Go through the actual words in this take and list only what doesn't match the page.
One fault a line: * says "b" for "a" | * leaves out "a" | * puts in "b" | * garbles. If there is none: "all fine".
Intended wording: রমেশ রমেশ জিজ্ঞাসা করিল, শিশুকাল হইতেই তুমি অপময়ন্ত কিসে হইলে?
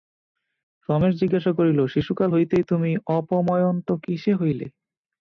* leaves out "রমেশ"